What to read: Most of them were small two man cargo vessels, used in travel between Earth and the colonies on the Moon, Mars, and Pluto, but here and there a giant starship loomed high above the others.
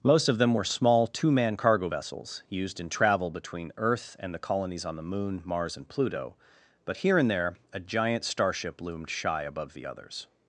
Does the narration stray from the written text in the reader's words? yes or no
yes